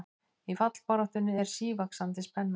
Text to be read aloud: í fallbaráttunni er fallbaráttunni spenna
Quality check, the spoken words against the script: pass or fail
fail